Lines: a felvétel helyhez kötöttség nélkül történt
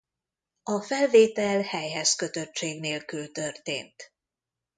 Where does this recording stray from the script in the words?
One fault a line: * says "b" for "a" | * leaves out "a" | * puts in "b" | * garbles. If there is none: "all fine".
all fine